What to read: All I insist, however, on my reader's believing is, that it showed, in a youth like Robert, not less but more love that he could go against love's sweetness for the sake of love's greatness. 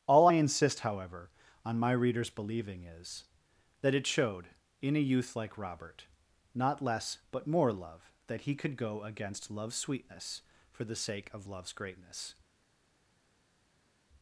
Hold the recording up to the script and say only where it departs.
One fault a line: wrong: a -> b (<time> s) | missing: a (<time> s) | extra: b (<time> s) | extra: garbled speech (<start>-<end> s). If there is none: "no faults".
no faults